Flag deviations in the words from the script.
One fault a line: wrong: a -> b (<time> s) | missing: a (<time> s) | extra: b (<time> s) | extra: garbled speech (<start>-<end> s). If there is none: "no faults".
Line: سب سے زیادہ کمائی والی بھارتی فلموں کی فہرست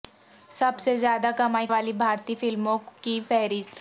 no faults